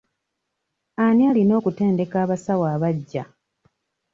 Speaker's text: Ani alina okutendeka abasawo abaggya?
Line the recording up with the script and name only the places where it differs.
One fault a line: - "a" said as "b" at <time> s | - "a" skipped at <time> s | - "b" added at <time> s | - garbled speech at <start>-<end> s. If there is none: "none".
none